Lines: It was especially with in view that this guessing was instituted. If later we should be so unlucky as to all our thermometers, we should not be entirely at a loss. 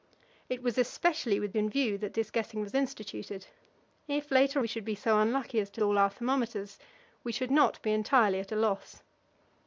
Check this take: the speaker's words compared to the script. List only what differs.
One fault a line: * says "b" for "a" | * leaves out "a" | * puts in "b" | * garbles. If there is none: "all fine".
all fine